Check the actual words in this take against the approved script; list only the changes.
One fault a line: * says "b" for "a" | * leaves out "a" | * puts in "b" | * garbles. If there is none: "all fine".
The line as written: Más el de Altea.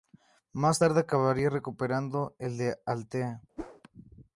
* puts in "tarde acabaría recuperando"